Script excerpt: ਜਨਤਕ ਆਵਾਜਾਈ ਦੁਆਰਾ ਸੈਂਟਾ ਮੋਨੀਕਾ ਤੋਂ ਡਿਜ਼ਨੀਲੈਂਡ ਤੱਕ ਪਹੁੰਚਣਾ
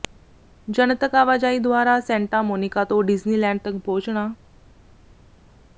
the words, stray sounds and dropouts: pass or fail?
pass